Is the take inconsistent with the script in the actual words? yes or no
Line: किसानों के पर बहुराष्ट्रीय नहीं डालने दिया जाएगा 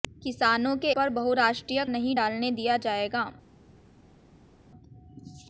no